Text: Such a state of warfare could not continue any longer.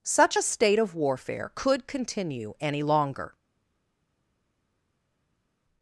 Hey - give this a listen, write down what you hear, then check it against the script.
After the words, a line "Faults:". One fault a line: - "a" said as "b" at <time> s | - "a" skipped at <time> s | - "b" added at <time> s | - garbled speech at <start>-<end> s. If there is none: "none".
Such a state of warfare could continue any longer.
Faults:
- "not" skipped at 1.9 s